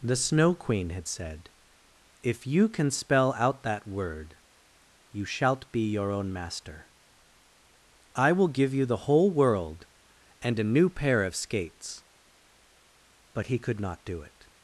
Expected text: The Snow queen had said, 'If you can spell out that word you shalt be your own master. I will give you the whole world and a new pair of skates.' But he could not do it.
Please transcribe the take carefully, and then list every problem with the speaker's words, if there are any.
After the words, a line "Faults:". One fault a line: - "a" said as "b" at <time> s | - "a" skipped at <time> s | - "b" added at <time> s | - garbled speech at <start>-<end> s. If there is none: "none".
The Snow queen had said, 'If you can spell out that word you shalt be your own master. I will give you the whole world and a new pair of skates.' But he could not do it.
Faults:
none